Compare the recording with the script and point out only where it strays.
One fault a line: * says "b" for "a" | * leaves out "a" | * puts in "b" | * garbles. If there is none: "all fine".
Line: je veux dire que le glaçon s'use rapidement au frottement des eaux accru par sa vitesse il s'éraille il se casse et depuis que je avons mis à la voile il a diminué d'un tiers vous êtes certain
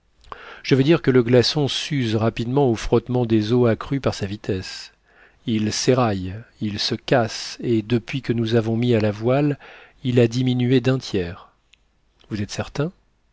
* says "nous" for "je"